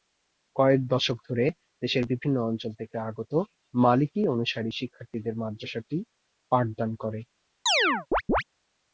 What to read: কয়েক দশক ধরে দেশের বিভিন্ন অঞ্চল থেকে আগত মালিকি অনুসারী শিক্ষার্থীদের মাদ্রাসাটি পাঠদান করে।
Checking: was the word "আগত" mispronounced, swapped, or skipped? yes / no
no